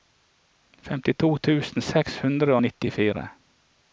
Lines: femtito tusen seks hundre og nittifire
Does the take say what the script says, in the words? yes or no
yes